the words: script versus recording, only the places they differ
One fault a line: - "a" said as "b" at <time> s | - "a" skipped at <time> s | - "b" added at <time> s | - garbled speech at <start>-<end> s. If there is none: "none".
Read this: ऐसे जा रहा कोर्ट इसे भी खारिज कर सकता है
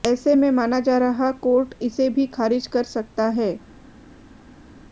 - "में माना" added at 0.3 s